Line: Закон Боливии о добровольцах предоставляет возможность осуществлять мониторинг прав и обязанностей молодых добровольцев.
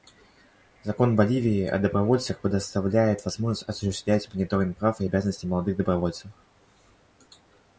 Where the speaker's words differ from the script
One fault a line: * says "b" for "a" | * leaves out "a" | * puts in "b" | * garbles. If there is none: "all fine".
all fine